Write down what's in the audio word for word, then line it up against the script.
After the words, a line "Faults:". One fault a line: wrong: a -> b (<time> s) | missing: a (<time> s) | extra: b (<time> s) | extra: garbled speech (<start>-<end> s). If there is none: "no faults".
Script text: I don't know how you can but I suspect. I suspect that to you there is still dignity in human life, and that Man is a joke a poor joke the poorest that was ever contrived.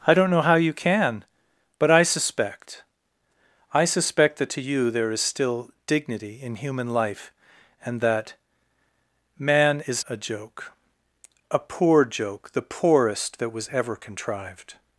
I don't know how you can but I suspect. I suspect that to you there is still dignity in human life, and that Man is a joke a poor joke the poorest that was ever contrived.
Faults:
no faults